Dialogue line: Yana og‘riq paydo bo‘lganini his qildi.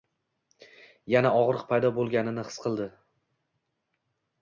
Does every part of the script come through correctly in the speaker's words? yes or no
yes